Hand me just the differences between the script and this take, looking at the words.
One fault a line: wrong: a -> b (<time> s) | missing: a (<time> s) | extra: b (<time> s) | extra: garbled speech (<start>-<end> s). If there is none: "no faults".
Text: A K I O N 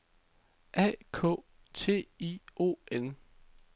extra: T (1.7 s)